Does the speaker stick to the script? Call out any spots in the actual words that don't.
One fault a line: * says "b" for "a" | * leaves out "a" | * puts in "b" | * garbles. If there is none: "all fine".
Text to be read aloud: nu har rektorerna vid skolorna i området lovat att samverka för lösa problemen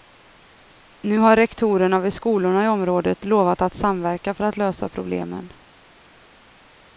* puts in "att"